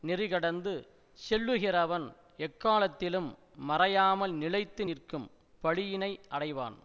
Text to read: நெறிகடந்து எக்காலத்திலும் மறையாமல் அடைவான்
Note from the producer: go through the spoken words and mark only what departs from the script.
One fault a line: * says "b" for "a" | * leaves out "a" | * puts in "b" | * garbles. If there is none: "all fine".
* puts in "செல்லுகிறவன்"
* puts in "நிலைத்து நிற்கும் பழியினை"